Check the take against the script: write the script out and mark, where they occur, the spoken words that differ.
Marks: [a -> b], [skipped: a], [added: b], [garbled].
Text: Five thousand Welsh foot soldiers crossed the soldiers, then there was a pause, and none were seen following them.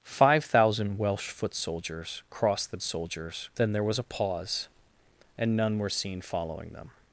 Five thousand Welsh foot soldiers crossed the soldiers, then there was a pause, and none were seen following them.